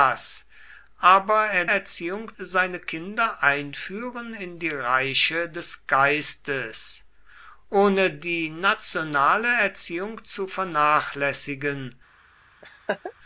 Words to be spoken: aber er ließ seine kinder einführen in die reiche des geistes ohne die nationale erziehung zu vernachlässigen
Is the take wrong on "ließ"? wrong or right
wrong